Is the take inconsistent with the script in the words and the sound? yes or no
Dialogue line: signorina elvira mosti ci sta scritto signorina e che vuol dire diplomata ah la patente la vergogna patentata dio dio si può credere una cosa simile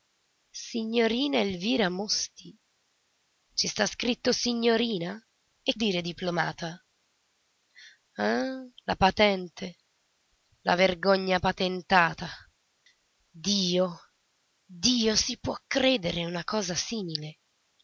yes